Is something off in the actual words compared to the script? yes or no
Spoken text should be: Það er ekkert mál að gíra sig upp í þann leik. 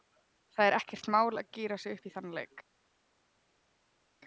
no